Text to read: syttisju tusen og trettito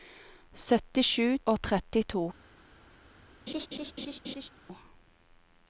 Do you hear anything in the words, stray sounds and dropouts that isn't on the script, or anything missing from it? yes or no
yes